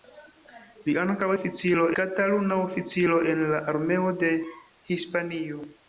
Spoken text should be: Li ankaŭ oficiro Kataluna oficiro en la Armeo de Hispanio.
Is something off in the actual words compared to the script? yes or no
no